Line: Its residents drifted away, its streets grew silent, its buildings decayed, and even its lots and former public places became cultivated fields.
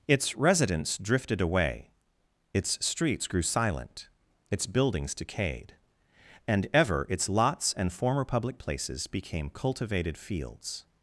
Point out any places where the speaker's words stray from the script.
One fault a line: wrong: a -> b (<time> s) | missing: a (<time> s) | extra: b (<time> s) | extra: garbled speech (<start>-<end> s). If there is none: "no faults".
wrong: even -> ever (6.7 s)